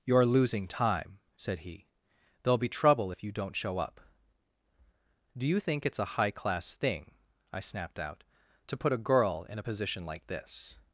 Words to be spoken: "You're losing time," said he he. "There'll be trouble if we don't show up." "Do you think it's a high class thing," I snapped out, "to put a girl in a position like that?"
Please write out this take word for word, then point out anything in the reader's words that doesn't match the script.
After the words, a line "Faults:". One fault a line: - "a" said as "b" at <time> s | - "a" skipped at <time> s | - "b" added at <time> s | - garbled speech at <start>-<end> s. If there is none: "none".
"You're losing time," said he. "There'll be trouble if you don't show up." "Do you think it's a high class thing," I snapped out, "to put a girl in a position like this?"
Faults:
- "he" skipped at 1.9 s
- "we" said as "you" at 3.2 s
- "that" said as "this" at 10.3 s